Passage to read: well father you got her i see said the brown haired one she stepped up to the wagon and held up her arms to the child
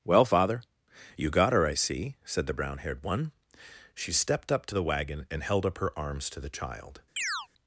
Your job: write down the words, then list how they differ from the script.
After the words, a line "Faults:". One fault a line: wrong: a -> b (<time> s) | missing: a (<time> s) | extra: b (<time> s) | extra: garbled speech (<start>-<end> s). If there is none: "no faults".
well father you got her i see said the brown haired one she stepped up to the wagon and held up her arms to the child
Faults:
no faults